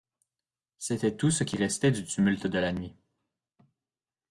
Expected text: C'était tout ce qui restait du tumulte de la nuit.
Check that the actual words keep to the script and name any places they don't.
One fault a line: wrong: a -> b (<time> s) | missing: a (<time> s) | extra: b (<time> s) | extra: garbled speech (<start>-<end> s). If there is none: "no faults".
no faults